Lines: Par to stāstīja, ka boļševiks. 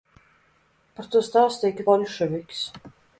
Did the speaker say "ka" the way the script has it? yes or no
yes